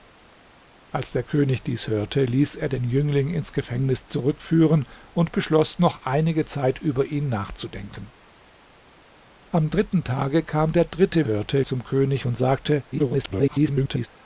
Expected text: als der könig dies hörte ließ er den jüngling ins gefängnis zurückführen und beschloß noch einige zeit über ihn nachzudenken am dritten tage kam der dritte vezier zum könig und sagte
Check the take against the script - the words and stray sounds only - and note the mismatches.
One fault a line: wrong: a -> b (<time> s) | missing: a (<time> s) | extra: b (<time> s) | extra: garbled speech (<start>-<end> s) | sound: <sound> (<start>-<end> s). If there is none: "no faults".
wrong: vezier -> hörte (11.3 s)
extra: garbled speech (12.9-14.1 s)